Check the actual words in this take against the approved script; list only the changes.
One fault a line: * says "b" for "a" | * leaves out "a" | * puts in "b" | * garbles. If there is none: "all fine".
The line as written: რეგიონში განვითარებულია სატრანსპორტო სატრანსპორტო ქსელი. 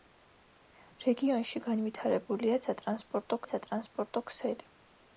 all fine